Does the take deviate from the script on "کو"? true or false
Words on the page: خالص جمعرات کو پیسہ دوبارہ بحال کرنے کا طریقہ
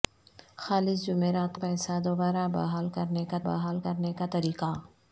true